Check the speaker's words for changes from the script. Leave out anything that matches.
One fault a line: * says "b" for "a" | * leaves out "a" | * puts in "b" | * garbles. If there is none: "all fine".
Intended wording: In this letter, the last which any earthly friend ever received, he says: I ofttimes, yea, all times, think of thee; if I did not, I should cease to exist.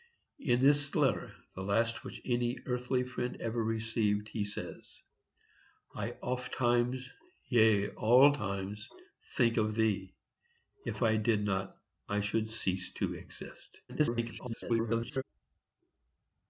* garbles